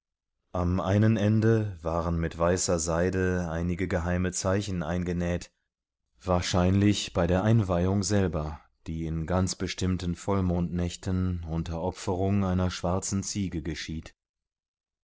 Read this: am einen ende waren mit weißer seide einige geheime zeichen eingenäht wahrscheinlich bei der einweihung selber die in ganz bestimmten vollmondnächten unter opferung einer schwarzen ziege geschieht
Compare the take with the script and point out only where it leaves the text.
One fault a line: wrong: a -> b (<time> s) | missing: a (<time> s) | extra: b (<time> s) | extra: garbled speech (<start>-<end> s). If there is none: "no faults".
no faults